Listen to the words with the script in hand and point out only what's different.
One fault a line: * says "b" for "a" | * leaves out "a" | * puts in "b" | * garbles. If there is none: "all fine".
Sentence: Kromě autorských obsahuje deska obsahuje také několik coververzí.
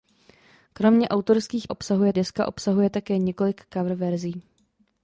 all fine